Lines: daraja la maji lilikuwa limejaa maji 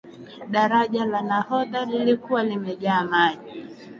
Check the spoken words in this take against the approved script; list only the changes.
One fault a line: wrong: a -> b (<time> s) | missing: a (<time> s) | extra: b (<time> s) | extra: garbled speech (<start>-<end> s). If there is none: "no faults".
wrong: maji -> nahodha (1.2 s)